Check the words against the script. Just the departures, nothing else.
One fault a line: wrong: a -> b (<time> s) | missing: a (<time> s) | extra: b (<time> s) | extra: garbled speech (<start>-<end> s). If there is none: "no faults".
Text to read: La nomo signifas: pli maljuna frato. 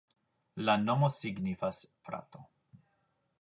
missing: pli maljuna (1.8 s)